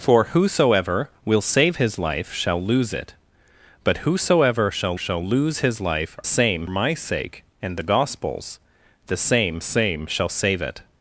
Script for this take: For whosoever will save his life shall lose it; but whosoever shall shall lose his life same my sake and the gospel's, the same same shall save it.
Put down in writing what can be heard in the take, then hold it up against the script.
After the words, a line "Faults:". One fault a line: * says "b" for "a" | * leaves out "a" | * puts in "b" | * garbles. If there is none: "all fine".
For whosoever will save his life shall lose it; but whosoever shall shall lose his life same my sake and the gospel's, the same same shall save it.
Faults:
all fine